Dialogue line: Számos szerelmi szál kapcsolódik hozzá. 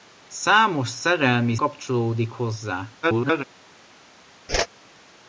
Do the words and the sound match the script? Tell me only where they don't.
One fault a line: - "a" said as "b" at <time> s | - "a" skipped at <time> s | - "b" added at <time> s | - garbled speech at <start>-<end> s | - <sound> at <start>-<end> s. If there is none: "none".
- "szál" skipped at 1.6 s
- garbled speech at 3.0-3.4 s
- whoosh at 4.5-4.7 s